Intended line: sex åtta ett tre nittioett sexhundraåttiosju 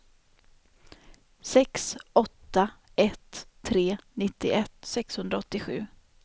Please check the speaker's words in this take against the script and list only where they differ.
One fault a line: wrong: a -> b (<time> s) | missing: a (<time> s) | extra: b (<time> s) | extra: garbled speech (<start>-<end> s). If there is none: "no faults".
no faults